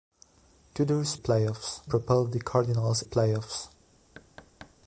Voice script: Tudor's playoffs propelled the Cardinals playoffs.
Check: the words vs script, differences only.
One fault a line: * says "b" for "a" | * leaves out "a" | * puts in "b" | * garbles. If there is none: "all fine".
all fine